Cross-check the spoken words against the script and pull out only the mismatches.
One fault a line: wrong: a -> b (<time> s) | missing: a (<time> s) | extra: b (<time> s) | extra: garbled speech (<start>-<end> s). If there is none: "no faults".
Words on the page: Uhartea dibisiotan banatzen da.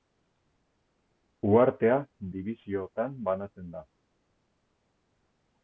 no faults